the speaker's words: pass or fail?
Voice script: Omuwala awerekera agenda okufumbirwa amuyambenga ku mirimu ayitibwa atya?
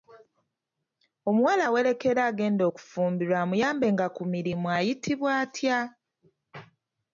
pass